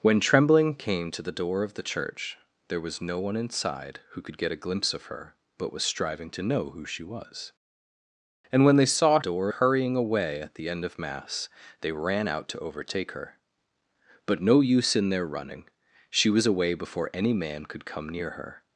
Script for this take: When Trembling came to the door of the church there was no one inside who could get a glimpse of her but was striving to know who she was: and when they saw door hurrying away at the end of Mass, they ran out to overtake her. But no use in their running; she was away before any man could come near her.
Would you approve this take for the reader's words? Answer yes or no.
yes